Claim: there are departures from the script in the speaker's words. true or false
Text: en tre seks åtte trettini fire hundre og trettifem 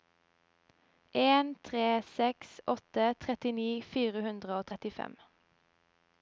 false